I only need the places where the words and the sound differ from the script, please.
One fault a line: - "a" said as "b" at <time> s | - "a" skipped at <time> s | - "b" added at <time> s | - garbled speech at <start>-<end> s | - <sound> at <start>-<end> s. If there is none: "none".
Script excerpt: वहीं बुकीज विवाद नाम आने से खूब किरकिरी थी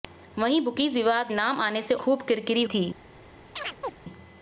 - chirp at 3.6-3.9 s